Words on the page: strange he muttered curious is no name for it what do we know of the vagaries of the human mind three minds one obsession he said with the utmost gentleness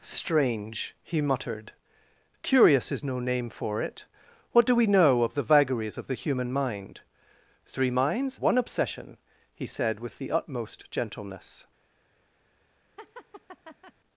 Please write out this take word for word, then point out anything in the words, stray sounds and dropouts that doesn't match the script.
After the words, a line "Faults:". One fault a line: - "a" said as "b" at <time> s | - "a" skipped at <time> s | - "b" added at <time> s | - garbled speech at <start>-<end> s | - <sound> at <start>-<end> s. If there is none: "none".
strange he muttered curious is no name for it what do we know of the vagaries of the human mind three minds one obsession he said with the utmost gentleness
Faults:
- laugh at 13.0-13.9 s